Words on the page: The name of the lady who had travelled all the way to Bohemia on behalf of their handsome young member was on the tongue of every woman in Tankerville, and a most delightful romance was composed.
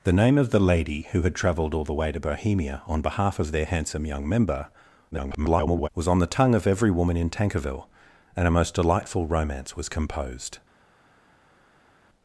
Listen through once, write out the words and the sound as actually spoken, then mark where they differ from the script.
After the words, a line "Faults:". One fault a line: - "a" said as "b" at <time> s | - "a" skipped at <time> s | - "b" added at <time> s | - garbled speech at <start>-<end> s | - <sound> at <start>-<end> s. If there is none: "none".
The name of the lady who had travelled all the way to Bohemia on behalf of their handsome young member [garbled] was on the tongue of every woman in Tankerville, and a most delightful romance was composed.
Faults:
- garbled speech at 5.1-5.9 s